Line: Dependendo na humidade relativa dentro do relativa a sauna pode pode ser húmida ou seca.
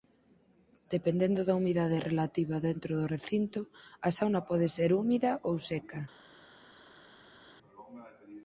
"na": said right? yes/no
no